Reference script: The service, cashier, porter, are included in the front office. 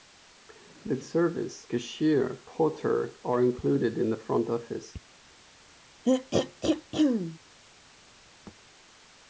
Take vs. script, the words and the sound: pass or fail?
fail